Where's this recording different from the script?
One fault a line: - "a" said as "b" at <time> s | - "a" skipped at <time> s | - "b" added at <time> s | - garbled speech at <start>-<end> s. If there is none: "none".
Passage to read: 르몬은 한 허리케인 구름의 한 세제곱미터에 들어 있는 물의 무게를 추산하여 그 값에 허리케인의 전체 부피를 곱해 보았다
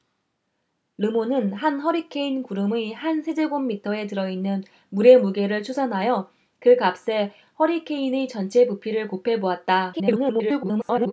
- garbled speech at 9.9-11.1 s